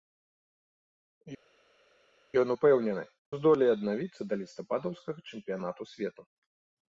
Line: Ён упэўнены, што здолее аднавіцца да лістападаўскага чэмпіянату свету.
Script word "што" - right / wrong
wrong